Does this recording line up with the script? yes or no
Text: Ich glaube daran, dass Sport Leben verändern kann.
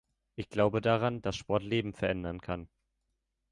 yes